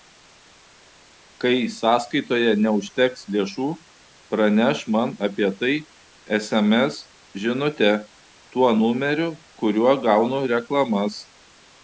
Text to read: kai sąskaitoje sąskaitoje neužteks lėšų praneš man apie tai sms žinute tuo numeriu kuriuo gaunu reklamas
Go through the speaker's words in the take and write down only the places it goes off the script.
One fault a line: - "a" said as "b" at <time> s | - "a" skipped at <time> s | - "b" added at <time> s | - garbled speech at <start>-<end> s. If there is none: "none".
- "sąskaitoje" skipped at 2.5 s